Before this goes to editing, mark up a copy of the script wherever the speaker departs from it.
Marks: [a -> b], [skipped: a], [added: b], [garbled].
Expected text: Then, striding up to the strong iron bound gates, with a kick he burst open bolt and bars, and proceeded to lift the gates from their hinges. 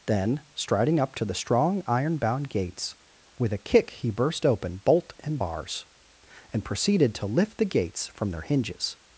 Then, striding up to the strong iron bound gates, with a kick he burst open bolt and bars, and proceeded to lift the gates from their hinges.